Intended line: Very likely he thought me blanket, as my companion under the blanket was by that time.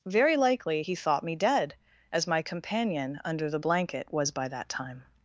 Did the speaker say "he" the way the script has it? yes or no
yes